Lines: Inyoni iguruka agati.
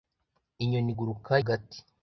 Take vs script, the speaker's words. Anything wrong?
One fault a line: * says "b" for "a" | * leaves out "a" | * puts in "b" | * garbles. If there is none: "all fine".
all fine